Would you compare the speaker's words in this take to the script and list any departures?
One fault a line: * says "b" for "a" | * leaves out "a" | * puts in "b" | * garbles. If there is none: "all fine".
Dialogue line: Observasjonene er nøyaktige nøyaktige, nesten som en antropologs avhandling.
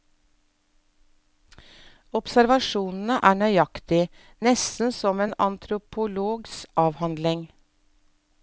* leaves out "nøyaktige"